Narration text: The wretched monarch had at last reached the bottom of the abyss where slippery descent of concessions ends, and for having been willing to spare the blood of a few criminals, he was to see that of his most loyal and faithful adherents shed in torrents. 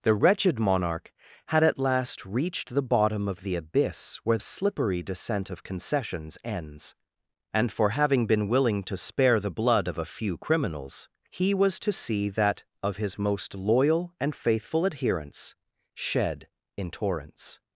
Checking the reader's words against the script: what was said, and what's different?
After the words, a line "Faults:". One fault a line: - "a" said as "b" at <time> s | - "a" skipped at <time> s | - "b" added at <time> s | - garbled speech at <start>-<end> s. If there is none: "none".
The wretched monarch had at last reached the bottom of the abyss where slippery descent of concessions ends, and for having been willing to spare the blood of a few criminals, he was to see that of his most loyal and faithful adherents shed in torrents.
Faults:
none